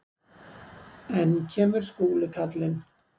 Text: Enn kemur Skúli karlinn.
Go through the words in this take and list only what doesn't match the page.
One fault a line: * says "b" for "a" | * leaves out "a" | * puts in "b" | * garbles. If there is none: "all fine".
all fine